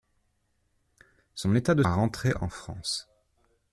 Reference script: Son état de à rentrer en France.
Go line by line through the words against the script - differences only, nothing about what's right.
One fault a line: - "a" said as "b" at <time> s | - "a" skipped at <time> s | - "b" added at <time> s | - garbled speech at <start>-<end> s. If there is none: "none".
none